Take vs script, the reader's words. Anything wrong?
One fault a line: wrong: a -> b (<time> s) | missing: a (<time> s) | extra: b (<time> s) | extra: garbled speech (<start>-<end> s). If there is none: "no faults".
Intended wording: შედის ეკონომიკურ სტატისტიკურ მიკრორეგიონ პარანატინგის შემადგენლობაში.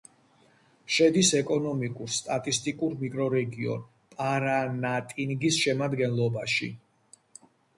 no faults